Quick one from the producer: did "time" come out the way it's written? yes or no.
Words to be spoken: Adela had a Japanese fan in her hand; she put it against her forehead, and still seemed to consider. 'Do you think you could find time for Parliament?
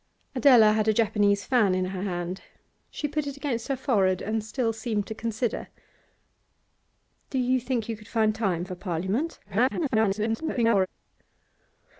yes